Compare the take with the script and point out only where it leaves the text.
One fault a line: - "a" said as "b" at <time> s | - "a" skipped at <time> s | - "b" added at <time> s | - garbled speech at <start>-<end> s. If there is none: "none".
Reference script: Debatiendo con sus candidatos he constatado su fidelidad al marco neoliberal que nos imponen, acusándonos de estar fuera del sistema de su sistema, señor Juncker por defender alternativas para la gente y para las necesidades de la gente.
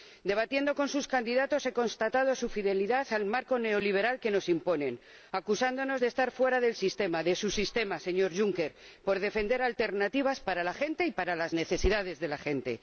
none